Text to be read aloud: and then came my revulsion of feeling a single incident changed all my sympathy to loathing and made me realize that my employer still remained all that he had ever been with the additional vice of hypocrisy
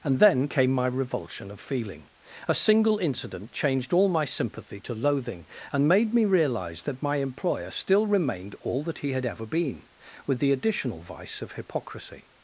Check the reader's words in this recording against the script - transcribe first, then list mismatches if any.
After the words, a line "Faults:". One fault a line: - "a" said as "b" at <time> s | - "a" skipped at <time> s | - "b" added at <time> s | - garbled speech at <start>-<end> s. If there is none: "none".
and then came my revulsion of feeling a single incident changed all my sympathy to loathing and made me realize that my employer still remained all that he had ever been with the additional vice of hypocrisy
Faults:
none